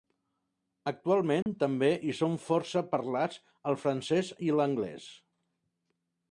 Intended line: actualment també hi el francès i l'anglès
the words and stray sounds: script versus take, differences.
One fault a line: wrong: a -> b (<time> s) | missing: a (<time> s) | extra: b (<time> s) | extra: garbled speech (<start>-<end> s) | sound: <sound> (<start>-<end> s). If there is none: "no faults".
sound: dropout (1.4-1.5 s)
extra: són força parlats (2.2 s)